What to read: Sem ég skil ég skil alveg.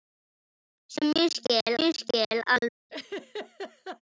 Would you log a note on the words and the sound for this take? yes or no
yes